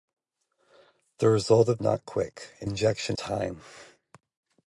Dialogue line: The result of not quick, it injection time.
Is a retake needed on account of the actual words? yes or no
no